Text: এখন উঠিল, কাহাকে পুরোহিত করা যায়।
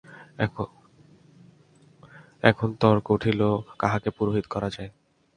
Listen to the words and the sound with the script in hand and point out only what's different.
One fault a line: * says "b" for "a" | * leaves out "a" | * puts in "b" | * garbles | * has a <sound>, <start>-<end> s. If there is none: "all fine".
* puts in "তর্ক"